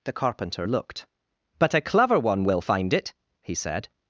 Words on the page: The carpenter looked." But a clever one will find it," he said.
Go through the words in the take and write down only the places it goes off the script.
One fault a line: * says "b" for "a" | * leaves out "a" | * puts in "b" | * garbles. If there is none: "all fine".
all fine